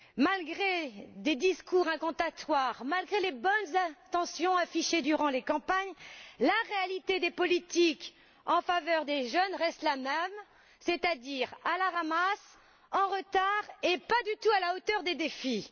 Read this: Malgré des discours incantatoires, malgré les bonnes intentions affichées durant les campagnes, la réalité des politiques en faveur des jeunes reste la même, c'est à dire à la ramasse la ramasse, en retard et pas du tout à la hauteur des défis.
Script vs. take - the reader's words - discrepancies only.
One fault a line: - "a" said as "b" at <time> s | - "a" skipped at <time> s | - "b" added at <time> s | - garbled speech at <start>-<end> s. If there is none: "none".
- "la ramasse" skipped at 12.6 s